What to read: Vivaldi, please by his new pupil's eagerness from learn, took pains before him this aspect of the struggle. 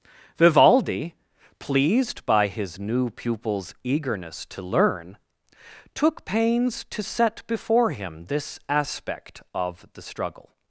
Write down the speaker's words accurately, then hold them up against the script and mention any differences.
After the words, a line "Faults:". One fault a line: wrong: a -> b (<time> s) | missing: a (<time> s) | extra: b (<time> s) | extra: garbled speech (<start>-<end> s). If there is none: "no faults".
Vivaldi, pleased by his new pupil's eagerness to learn, took pains to set before him this aspect of the struggle.
Faults:
wrong: please -> pleased (1.6 s)
wrong: from -> to (4.5 s)
extra: to set (6.8 s)